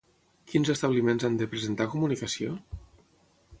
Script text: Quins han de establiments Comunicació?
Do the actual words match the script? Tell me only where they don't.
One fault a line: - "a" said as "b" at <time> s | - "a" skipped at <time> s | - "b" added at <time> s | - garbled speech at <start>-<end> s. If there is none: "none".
- "establiments" added at 0.7 s
- "establiments" said as "presentar" at 1.6 s